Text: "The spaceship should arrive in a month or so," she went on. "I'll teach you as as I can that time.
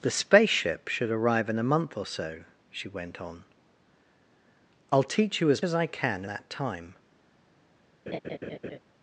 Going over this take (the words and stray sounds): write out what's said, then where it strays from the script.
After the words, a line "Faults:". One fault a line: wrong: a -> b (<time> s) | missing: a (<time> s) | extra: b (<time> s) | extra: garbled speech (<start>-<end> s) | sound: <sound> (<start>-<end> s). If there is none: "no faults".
"The spaceship should arrive in a month or so," she went on. "I'll teach you as as I can that time.
Faults:
sound: laugh (8.1-8.8 s)